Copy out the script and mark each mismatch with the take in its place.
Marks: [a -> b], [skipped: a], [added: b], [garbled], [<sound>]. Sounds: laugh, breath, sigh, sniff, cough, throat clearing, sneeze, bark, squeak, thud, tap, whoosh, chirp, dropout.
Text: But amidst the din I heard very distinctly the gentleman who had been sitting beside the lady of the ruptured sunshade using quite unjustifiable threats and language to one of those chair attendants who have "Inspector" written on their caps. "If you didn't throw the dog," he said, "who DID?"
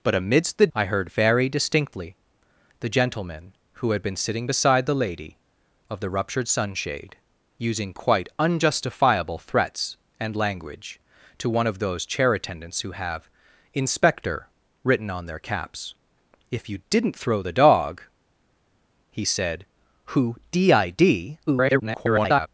But amidst the [skipped: din] I heard very distinctly the gentleman who had been sitting beside the lady of the ruptured sunshade using quite unjustifiable threats and language to one of those chair attendants who have "Inspector" written on their caps. "If you didn't throw the dog," he said, "who DID?" [garbled]